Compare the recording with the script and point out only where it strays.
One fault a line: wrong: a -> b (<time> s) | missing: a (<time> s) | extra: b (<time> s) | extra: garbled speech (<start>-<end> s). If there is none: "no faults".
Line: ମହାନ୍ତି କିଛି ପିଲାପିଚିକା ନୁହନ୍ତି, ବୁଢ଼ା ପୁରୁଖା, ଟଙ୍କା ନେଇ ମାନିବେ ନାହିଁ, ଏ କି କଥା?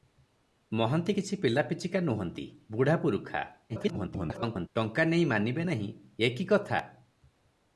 extra: garbled speech (3.7-4.7 s)